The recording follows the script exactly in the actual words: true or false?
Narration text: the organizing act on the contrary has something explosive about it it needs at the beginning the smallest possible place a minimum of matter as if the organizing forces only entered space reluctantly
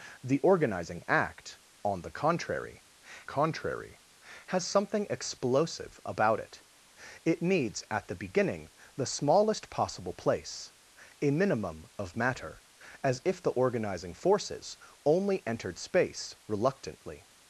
false